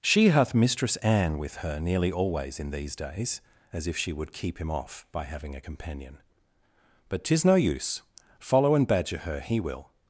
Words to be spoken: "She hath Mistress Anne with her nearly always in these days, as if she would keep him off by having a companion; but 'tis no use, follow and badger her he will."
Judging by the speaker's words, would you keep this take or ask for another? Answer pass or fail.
pass